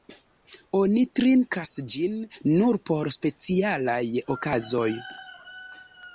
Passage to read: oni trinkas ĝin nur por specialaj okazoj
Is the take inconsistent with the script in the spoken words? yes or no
no